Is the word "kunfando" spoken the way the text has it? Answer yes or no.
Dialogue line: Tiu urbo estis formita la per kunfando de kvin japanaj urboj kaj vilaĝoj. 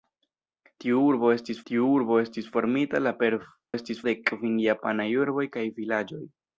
no